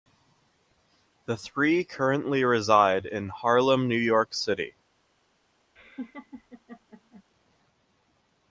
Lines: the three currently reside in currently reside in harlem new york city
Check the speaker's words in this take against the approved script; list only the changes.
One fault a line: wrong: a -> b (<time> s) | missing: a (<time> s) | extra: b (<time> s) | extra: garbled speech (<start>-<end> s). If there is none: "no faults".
missing: currently reside in (3.3 s)